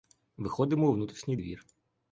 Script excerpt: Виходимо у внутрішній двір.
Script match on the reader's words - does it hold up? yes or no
yes